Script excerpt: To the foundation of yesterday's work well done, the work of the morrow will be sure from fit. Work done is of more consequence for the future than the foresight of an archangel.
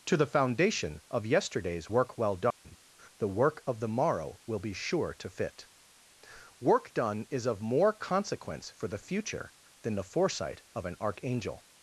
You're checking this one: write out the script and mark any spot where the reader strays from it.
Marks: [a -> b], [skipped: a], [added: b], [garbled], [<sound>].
To the foundation of yesterday's work well done, [dropout] the work of the morrow will be sure [from -> to] fit. Work done is of more consequence for the future than the foresight of an archangel.